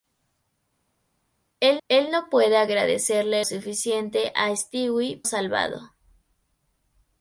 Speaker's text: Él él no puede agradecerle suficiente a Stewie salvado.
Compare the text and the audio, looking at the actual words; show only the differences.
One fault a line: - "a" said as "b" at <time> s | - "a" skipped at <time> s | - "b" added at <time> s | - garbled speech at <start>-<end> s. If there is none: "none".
none